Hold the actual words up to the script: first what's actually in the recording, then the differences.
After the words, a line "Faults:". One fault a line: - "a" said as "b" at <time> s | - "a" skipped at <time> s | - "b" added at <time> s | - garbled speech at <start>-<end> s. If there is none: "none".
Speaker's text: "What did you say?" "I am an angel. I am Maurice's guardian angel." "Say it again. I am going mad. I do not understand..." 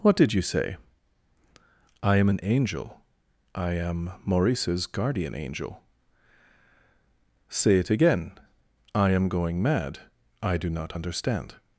"What did you say?" "I am an angel. I am Maurice's guardian angel." "Say it again. I am going mad. I do not understand..."
Faults:
none